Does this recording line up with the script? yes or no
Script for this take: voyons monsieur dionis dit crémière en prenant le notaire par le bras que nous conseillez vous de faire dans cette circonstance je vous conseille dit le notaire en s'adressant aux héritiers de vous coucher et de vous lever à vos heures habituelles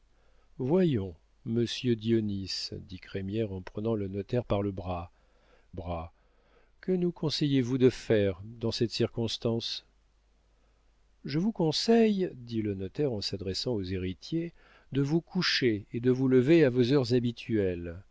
no